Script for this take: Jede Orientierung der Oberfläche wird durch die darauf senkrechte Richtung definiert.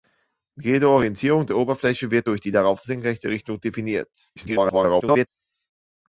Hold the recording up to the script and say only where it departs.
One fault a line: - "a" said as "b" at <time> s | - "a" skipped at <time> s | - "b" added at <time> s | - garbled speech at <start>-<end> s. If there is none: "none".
- garbled speech at 4.4-5.3 s